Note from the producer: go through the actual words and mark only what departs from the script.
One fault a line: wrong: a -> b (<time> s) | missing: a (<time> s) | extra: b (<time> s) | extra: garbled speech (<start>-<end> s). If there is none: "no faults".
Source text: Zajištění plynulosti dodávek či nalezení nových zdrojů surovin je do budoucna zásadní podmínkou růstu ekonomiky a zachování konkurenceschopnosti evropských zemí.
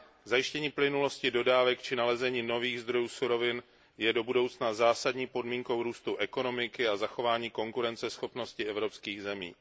no faults